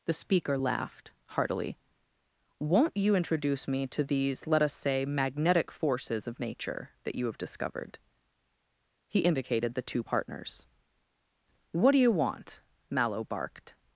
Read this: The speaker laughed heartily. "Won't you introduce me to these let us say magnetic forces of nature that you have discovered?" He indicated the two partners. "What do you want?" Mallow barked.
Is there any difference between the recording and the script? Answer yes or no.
no